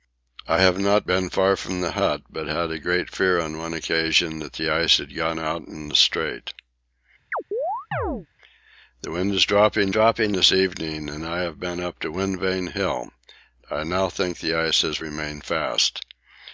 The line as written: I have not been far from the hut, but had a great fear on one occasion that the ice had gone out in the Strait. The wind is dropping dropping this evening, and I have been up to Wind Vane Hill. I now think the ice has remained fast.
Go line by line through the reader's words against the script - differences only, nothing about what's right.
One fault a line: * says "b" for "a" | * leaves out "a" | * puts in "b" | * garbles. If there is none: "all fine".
all fine